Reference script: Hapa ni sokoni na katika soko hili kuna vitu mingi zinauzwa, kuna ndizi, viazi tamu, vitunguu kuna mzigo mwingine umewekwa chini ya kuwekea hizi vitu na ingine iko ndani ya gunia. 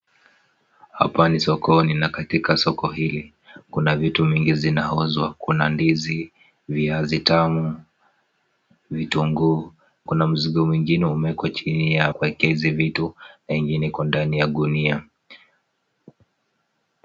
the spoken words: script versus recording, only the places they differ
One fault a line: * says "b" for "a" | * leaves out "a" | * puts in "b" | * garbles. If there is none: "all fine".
all fine